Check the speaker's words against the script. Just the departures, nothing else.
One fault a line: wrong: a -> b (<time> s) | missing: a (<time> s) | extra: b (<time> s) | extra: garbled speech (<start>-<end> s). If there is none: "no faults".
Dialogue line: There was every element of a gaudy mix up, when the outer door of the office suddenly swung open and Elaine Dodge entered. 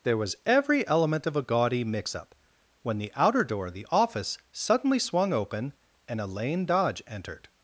no faults